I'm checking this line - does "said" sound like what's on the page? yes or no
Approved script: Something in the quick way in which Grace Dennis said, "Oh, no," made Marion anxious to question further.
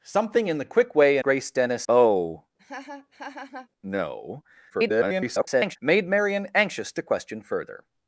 no